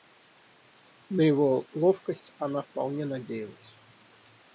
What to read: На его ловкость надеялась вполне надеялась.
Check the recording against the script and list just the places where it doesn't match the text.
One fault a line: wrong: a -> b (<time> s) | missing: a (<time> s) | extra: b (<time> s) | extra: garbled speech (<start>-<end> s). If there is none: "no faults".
wrong: надеялась -> она (2.4 s)